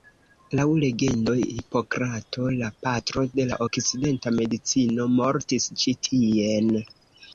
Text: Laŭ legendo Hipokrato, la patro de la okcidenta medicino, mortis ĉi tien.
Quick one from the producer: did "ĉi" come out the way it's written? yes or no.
yes